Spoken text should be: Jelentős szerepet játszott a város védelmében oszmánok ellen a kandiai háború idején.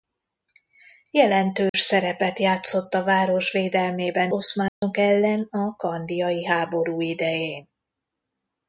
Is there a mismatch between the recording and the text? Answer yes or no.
no